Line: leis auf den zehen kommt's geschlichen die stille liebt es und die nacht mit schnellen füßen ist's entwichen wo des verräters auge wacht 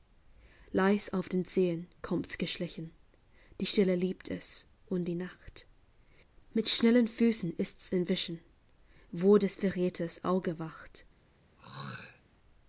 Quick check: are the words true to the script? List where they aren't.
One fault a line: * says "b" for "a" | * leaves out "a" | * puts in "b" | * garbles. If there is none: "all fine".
all fine